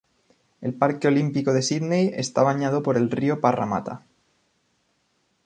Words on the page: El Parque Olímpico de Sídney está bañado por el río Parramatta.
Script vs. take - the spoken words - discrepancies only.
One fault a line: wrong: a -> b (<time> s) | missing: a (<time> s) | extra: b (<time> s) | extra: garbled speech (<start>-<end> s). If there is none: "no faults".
no faults